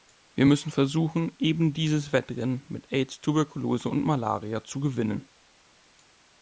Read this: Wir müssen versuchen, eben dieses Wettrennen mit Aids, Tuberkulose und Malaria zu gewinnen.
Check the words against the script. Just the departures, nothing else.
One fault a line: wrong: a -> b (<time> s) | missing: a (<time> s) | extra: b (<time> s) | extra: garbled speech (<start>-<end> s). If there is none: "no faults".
no faults